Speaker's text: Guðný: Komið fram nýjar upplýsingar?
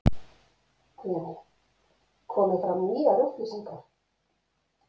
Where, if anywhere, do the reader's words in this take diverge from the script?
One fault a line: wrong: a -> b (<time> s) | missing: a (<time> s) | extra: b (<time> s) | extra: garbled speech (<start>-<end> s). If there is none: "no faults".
no faults